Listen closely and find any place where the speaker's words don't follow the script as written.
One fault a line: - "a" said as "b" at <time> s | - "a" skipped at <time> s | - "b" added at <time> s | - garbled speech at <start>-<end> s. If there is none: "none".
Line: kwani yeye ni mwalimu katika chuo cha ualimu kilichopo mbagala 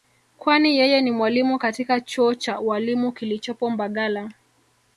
none